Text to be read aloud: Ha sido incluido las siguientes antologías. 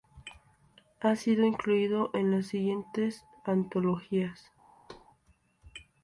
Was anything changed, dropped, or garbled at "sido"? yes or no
no